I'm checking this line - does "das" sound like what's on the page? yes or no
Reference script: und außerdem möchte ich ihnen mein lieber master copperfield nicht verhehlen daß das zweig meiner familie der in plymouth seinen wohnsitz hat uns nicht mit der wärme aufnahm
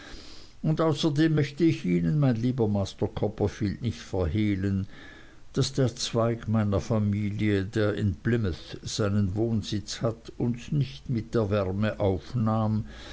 no